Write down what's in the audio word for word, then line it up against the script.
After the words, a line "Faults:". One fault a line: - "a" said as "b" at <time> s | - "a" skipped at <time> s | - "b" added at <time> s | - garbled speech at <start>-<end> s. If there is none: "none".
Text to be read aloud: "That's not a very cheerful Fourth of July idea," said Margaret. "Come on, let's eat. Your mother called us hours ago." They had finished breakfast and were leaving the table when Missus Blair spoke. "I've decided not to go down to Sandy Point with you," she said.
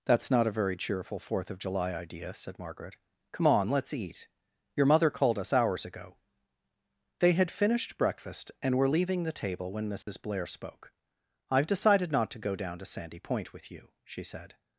"That's not a very cheerful Fourth of July idea," said Margaret. "Come on, let's eat. Your mother called us hours ago." They had finished breakfast and were leaving the table when Missus Blair spoke. "I've decided not to go down to Sandy Point with you," she said.
Faults:
none